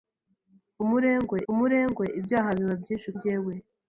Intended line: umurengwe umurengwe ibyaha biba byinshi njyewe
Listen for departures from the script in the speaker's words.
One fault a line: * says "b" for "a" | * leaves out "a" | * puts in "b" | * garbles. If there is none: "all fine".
all fine